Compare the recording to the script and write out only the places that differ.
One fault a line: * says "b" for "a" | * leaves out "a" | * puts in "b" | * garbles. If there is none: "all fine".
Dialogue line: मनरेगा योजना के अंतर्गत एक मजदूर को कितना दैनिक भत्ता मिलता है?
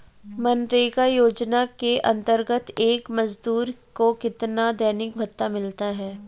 all fine